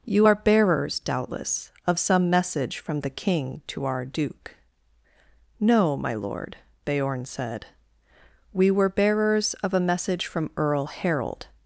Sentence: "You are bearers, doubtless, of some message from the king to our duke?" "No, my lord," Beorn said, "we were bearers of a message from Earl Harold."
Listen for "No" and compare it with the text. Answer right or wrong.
right